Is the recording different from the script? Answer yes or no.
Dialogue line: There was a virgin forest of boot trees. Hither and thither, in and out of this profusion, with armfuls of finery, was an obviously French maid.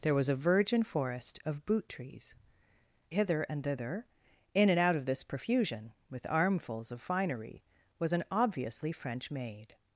no